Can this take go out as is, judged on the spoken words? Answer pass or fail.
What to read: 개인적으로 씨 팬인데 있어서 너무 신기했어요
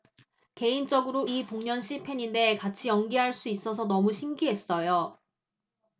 fail